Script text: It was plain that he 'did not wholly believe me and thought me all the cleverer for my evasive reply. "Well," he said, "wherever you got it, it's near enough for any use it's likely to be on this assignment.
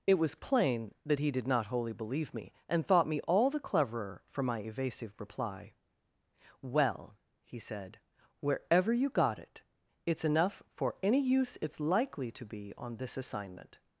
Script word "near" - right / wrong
wrong